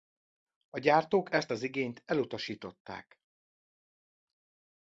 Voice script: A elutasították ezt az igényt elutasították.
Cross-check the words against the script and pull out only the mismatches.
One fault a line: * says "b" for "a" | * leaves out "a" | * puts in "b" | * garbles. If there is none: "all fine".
* says "gyártók" for "elutasították"